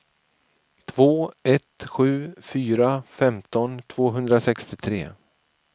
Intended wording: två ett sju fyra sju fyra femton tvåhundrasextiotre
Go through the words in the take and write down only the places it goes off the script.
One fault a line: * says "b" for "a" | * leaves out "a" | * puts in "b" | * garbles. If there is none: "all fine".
* leaves out "sju fyra"